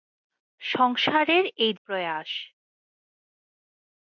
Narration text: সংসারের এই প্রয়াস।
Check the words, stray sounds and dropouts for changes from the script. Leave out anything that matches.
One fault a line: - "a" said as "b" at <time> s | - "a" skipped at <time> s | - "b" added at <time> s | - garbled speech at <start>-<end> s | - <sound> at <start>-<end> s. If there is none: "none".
none